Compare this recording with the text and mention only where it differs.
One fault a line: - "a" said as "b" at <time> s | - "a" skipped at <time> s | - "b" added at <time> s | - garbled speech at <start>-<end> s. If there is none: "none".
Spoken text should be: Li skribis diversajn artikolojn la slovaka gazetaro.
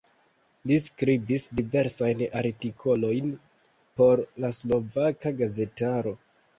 - "por" added at 4.0 s